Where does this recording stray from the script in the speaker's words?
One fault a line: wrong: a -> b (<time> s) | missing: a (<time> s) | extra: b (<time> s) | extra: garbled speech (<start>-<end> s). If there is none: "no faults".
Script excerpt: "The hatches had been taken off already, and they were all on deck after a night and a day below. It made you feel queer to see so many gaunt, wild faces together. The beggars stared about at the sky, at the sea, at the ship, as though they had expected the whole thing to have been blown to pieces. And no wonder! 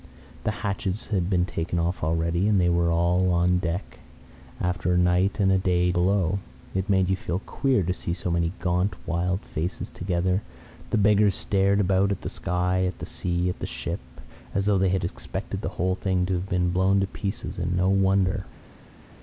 no faults